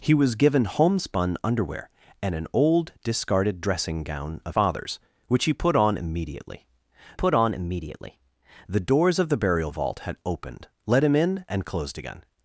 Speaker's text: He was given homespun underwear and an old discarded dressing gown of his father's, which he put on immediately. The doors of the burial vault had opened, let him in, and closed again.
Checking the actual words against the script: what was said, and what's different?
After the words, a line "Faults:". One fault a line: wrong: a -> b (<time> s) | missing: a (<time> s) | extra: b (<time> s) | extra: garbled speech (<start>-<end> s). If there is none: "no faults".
He was given homespun underwear and an old discarded dressing gown of father's, which he put on immediately put on immediately. The doors of the burial vault had opened, let him in, and closed again.
Faults:
missing: his (4.5 s)
extra: put on immediately (7.1 s)